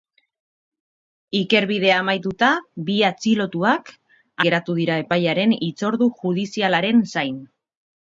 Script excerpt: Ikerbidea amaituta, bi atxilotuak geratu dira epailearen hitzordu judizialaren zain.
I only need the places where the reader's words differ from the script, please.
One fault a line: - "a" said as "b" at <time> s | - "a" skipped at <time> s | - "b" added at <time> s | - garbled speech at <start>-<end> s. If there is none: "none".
none